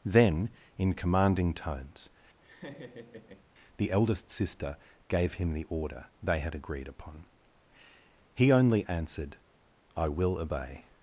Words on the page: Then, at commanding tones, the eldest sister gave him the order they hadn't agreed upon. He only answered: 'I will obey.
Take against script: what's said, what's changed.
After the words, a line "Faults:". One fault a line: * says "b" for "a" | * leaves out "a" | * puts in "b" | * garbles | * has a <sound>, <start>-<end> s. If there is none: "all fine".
Then, in commanding tones, the eldest sister gave him the order they had agreed upon. He only answered: 'I will obey.
Faults:
* says "in" for "at"
* has a laugh, 2.4-3.5 s
* says "had" for "hadn't"